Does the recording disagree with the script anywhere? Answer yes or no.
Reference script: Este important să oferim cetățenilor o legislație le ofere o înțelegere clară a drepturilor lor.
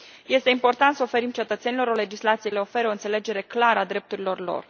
no